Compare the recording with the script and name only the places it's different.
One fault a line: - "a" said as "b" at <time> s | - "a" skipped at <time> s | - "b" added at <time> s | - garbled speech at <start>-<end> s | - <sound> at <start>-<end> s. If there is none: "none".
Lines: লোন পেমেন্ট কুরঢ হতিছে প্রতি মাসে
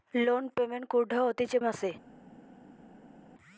- "প্রতি" skipped at 1.6 s